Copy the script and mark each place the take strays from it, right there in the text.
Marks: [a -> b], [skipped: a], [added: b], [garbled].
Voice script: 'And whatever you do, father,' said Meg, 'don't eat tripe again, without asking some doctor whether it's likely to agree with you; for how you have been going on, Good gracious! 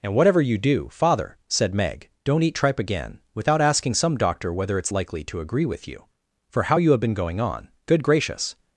'And whatever you do, father,' said Meg, 'don't eat tripe again, without asking some doctor whether it's likely to agree with you; for how you have been going on, Good gracious!